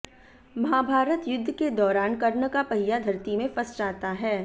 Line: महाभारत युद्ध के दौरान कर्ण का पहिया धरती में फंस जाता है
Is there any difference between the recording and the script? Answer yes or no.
no